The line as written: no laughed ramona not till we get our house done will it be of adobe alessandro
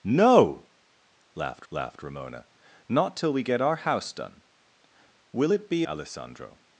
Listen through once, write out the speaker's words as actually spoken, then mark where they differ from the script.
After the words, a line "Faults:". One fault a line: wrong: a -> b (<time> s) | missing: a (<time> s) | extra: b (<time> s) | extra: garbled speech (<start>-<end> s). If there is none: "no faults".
no laughed laughed ramona not till we get our house done will it be alessandro
Faults:
extra: laughed (1.7 s)
missing: of adobe (5.8 s)